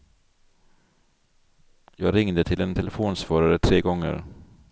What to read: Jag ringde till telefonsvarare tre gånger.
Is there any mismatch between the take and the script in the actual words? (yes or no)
yes